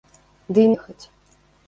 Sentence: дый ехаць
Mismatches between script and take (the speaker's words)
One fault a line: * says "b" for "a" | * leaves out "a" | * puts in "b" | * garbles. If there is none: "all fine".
all fine